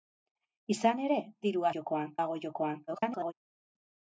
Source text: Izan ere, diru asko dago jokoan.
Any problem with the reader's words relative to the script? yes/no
yes